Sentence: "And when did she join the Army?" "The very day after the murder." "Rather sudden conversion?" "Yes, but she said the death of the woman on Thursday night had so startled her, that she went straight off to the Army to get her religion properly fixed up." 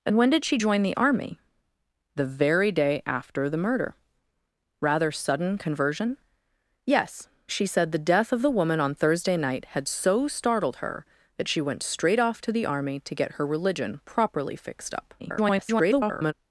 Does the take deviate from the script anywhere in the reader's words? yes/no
yes